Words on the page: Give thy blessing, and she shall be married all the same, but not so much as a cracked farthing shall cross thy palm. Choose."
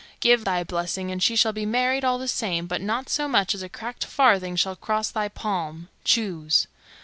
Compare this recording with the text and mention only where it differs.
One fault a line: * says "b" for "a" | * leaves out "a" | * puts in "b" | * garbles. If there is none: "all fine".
all fine